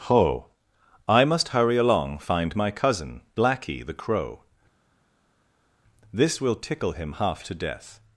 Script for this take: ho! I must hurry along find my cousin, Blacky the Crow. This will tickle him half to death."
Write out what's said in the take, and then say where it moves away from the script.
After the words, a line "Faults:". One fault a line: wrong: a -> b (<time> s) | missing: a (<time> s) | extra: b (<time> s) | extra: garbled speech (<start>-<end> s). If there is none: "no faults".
ho! I must hurry along find my cousin, Blacky the Crow. This will tickle him half to death."
Faults:
no faults